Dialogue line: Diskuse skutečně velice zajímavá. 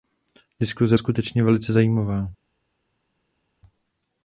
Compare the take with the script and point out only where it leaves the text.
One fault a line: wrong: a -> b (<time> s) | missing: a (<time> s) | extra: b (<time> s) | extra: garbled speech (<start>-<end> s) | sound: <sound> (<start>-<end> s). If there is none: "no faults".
no faults